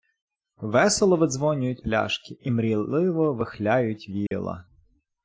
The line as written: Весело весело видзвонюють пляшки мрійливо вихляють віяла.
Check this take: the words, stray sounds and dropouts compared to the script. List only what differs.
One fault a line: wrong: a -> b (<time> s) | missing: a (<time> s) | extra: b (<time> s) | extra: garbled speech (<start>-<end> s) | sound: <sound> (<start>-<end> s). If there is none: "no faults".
missing: весело (1.2 s)
extra: і (2.4 s)
sound: dropout (4.3-4.3 s)